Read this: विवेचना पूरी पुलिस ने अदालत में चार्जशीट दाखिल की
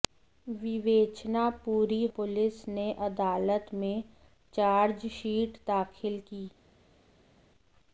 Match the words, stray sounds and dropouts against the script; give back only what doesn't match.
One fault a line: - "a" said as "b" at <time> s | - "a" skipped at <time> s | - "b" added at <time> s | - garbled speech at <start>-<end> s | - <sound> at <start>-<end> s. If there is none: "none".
none